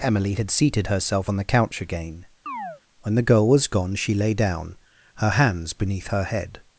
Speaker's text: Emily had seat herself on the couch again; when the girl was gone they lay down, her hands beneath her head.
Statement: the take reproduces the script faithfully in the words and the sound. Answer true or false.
false